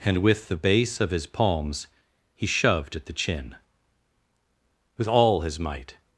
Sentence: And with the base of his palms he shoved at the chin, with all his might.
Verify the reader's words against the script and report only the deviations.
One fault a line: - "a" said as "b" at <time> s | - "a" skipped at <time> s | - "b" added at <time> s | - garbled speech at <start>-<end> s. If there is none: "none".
none